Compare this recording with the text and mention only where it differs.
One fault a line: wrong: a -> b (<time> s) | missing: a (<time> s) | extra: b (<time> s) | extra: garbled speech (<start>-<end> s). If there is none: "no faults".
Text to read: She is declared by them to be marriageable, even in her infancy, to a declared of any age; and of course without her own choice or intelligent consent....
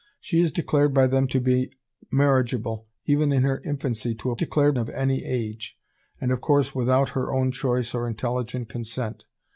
no faults